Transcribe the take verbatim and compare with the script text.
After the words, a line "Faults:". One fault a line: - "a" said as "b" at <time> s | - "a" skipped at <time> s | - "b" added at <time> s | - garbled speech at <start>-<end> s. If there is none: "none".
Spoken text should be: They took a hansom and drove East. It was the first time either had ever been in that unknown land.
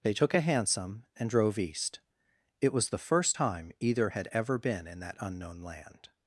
They took a hansom and drove East. It was the first time either had ever been in that unknown land.
Faults:
none